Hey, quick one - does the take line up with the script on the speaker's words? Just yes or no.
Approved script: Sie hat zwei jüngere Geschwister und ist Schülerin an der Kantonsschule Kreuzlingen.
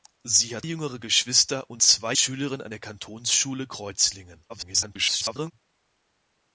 no